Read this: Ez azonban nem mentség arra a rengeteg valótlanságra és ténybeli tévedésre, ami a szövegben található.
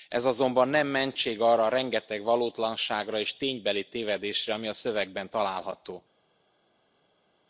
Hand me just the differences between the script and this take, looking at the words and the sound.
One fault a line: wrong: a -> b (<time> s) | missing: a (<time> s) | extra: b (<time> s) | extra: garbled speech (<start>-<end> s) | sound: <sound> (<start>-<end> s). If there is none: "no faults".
no faults